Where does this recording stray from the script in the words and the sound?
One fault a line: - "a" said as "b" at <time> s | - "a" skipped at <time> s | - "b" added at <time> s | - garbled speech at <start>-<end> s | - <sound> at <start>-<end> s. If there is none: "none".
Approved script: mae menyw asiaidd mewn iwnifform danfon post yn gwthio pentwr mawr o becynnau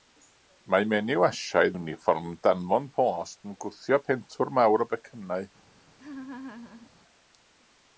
- "mewn" skipped at 1.8 s
- laugh at 6.0-6.9 s